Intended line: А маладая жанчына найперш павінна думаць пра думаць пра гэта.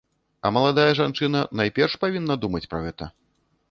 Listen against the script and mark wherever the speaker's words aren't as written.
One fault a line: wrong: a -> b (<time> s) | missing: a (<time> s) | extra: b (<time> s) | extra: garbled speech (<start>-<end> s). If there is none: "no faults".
missing: думаць пра (2.9 s)